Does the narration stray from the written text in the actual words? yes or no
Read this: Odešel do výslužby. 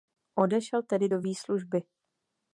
yes